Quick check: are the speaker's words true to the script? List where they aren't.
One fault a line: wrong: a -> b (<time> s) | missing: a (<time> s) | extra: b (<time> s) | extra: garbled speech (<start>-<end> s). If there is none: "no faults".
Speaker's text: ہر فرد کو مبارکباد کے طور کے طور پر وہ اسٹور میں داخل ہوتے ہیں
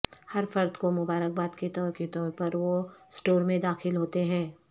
no faults